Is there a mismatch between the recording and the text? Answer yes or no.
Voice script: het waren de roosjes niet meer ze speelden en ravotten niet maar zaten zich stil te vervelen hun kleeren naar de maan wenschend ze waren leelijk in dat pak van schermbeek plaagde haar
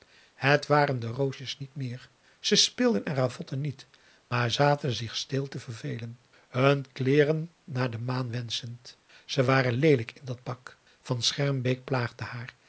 no